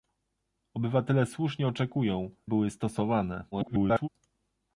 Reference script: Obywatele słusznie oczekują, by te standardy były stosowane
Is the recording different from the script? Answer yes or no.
yes